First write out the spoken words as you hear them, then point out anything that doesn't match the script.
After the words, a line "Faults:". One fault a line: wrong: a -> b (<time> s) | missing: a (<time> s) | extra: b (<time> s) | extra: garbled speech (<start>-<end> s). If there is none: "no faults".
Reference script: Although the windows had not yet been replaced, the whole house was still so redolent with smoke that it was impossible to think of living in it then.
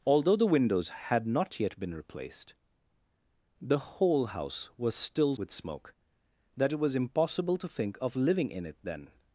Although the windows had not yet been replaced, the whole house was still with smoke that it was impossible to think of living in it then.
Faults:
missing: so redolent (5.3 s)